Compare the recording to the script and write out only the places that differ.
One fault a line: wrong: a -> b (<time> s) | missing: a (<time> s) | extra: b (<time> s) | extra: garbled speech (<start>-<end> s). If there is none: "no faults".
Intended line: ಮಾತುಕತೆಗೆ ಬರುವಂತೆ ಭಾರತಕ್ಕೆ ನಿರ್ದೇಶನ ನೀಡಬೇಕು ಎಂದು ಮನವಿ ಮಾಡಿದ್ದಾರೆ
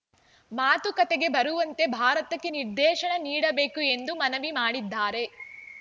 no faults